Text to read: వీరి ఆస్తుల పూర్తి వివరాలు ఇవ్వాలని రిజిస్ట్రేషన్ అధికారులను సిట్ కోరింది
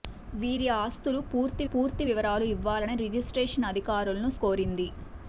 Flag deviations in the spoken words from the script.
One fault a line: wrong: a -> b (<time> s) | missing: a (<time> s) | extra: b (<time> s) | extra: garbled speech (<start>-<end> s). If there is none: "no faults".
extra: పూర్తి (1.7 s)
missing: సిట్ (4.3 s)